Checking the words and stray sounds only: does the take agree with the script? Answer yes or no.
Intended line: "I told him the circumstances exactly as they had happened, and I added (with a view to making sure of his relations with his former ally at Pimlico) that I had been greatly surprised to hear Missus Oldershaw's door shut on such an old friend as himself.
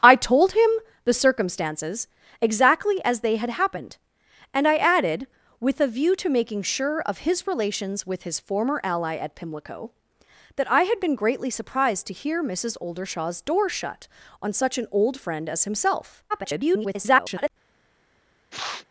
no